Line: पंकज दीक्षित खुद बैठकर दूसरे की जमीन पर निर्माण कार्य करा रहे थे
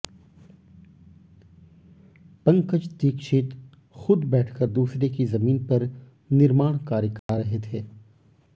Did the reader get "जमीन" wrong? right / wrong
right